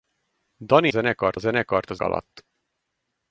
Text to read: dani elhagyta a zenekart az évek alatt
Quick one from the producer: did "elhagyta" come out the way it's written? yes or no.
no